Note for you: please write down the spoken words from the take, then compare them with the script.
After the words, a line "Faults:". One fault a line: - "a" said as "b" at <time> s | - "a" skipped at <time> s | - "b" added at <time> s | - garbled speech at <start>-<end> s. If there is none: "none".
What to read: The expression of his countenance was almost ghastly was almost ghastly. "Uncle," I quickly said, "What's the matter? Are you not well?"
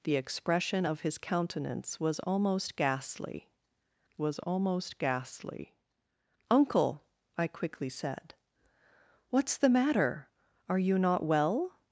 The expression of his countenance was almost ghastly was almost ghastly. "Uncle," I quickly said, "What's the matter? Are you not well?"
Faults:
none